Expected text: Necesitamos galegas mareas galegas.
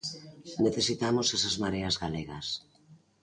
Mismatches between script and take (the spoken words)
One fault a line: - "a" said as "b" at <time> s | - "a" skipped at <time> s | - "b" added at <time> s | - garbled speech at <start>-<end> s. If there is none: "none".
- "galegas" said as "esas" at 1.4 s